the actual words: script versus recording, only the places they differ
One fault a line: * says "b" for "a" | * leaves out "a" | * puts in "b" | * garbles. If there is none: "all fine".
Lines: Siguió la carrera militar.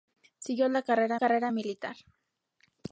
* puts in "carrera"